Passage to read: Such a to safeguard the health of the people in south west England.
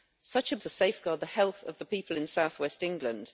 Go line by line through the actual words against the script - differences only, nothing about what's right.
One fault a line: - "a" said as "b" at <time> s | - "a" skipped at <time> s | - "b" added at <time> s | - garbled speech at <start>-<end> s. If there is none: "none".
none